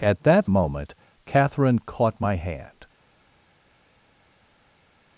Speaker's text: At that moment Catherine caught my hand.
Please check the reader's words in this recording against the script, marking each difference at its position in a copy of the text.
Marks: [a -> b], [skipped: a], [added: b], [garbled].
At that moment Catherine caught my hand.